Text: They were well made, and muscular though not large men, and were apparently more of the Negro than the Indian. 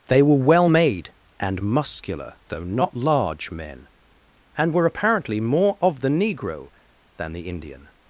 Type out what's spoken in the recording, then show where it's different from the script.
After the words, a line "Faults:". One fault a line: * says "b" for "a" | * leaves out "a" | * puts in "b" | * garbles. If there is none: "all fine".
They were well made, and muscular though not large men, and were apparently more of the Negro than the Indian.
Faults:
all fine